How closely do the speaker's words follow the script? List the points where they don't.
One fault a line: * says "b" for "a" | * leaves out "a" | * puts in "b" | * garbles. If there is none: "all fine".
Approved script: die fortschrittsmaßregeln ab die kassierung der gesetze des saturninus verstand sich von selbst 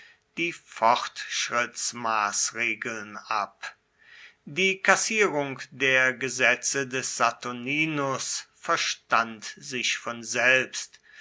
all fine